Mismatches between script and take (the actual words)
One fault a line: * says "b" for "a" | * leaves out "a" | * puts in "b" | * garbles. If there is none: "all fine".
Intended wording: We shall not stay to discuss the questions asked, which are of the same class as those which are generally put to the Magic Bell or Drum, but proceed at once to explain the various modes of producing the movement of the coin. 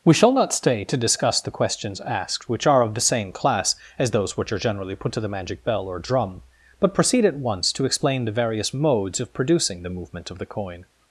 all fine